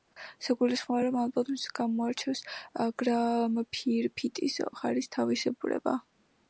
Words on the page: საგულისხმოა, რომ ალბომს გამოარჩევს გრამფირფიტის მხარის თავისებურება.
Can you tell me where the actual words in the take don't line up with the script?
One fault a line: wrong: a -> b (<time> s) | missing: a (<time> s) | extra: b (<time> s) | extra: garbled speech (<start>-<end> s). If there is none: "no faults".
no faults